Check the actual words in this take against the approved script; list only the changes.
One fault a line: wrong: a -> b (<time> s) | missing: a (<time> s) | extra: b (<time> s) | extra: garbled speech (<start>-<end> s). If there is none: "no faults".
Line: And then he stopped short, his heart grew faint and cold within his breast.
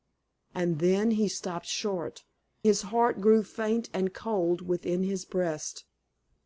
no faults